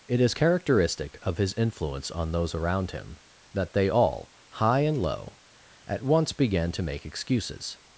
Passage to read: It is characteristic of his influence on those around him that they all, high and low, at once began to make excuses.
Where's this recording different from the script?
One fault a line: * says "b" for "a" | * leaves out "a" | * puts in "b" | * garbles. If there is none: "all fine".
all fine